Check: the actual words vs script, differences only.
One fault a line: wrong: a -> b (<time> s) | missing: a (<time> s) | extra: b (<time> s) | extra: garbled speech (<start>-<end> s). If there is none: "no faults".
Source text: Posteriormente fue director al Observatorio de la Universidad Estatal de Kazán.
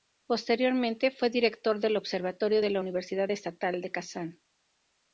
wrong: al -> del (1.8 s)